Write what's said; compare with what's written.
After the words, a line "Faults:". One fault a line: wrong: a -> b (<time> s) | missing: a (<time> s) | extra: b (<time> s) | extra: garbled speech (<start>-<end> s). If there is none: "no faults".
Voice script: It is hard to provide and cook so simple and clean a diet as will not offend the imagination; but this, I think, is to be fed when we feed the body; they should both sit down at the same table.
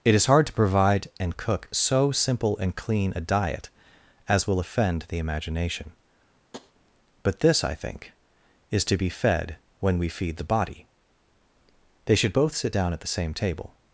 It is hard to provide and cook so simple and clean a diet as will offend the imagination; but this, I think, is to be fed when we feed the body; they should both sit down at the same table.
Faults:
missing: not (4.6 s)